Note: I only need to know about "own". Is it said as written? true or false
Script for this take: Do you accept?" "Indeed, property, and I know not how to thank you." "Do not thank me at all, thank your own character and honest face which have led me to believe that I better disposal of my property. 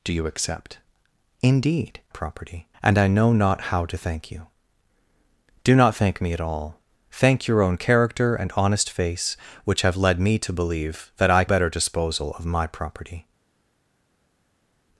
true